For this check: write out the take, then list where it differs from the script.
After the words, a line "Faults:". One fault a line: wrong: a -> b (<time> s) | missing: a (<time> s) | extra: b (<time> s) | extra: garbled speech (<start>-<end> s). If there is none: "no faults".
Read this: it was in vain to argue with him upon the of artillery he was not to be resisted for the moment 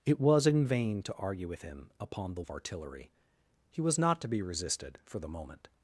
it was in vain to argue with him upon the of artillery he was not to be resisted for the moment
Faults:
no faults